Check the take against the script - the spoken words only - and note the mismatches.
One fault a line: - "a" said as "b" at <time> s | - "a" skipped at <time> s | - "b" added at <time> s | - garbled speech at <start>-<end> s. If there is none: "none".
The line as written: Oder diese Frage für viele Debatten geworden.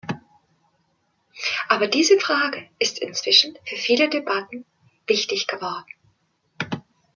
- "Oder" said as "Aber" at 1.7 s
- "ist inzwischen" added at 2.8 s
- "wichtig" added at 5.1 s